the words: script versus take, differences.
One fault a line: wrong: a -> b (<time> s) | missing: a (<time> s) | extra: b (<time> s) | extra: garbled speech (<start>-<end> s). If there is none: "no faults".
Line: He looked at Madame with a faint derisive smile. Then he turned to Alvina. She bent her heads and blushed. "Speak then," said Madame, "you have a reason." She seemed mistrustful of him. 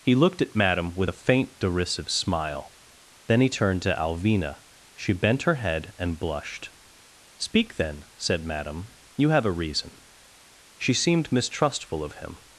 wrong: heads -> head (5.5 s)